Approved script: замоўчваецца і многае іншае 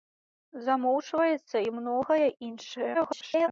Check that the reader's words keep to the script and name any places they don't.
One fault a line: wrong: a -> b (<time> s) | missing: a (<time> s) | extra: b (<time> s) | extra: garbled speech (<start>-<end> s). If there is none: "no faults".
extra: garbled speech (2.9-3.5 s)